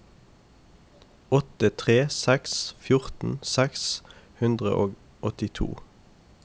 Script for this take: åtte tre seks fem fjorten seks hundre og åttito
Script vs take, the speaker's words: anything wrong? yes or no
yes